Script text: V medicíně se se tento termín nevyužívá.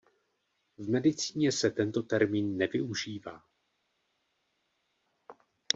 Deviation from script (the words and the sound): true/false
true